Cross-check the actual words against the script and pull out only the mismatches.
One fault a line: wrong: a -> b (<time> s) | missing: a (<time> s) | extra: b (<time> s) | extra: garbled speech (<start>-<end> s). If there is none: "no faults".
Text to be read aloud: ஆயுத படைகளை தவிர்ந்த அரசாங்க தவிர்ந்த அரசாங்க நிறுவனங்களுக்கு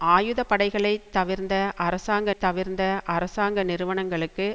no faults